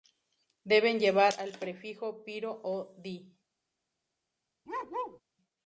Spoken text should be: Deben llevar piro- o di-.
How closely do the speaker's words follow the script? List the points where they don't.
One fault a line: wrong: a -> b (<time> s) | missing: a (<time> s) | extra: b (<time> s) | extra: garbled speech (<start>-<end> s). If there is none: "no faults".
extra: el prefijo (1.4 s)